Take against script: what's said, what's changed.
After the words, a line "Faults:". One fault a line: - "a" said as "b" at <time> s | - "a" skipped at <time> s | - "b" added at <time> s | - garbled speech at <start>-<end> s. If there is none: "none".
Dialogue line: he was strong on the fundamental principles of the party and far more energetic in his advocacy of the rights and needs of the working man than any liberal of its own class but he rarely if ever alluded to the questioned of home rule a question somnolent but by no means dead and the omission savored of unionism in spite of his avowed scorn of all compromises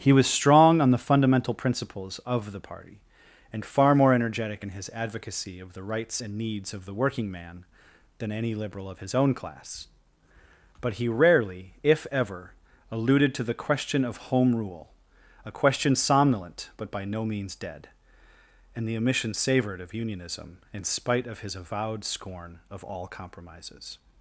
he was strong on the fundamental principles of the party and far more energetic in his advocacy of the rights and needs of the working man than any liberal of his own class but he rarely if ever alluded to the question of home rule a question somnolent but by no means dead and the omission savored of unionism in spite of his avowed scorn of all compromises
Faults:
- "its" said as "his" at 9.0 s
- "questioned" said as "question" at 13.5 s